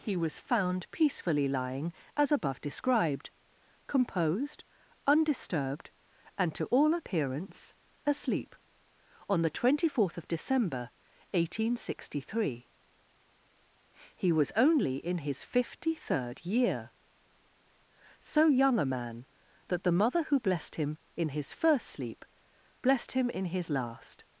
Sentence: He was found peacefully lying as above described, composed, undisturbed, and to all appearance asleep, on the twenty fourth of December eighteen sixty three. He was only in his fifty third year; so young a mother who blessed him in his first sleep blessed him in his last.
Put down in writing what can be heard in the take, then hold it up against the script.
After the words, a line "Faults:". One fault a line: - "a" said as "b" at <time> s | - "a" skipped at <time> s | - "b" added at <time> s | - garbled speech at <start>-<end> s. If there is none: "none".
He was found peacefully lying as above described, composed, undisturbed, and to all appearance asleep, on the twenty fourth of December eighteen sixty three. He was only in his fifty third year; so young a man that the mother who blessed him in his first sleep blessed him in his last.
Faults:
- "man that the" added at 18.9 s